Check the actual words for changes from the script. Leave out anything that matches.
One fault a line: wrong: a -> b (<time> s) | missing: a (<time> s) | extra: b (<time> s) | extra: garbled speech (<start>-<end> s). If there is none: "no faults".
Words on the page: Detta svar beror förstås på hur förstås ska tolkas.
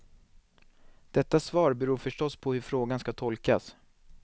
wrong: förstås -> frågan (2.6 s)